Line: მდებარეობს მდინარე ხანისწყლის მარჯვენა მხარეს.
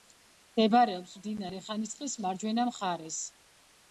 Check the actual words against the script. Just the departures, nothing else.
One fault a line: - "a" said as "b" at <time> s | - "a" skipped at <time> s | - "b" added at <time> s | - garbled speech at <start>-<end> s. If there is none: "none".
none